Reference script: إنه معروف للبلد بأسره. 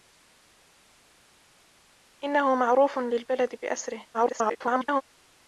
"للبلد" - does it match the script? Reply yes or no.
yes